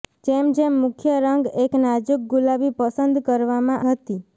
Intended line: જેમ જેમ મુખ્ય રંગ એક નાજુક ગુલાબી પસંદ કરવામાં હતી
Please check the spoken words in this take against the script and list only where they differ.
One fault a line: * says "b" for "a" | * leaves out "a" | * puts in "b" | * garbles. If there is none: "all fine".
all fine